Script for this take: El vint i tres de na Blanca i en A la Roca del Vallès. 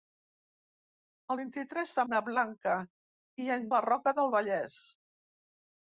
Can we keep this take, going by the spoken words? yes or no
yes